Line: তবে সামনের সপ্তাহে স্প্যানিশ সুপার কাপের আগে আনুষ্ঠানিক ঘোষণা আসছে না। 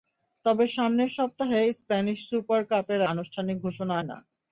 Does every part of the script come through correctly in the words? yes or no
no